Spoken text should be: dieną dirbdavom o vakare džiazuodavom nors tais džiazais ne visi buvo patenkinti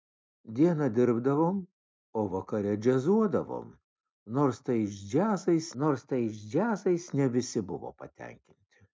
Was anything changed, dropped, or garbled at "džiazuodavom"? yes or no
no